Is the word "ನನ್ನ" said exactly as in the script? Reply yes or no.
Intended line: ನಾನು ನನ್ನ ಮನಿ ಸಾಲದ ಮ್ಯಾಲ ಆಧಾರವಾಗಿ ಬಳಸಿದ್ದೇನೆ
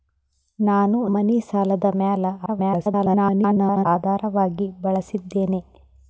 no